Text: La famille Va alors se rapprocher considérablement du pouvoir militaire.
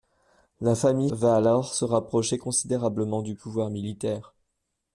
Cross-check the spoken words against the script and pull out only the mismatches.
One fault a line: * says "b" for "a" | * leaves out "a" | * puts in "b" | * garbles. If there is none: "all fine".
all fine